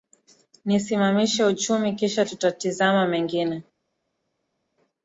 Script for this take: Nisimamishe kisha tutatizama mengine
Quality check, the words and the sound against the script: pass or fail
fail